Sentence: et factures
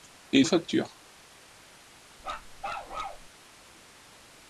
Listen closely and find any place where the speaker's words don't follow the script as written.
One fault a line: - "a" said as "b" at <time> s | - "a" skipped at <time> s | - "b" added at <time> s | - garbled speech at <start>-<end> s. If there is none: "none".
none